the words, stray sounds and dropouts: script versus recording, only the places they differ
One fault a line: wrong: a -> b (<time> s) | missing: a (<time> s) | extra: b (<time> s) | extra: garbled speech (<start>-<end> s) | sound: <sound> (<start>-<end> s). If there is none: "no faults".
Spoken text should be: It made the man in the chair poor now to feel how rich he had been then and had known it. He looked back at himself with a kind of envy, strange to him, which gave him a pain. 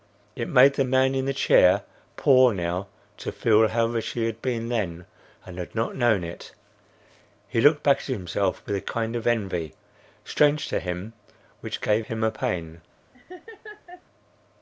extra: not (5.8 s)
sound: laugh (13.1-14.0 s)